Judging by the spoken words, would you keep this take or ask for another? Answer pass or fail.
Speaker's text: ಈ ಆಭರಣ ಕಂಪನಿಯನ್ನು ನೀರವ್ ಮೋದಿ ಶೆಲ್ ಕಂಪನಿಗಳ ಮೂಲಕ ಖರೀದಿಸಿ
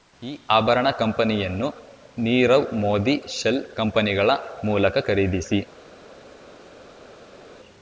pass